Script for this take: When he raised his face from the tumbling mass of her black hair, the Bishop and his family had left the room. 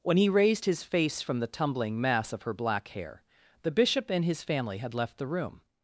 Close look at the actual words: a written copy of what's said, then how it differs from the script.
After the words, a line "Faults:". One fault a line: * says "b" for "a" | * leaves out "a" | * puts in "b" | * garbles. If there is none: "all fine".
When he raised his face from the tumbling mass of her black hair, the Bishop and his family had left the room.
Faults:
all fine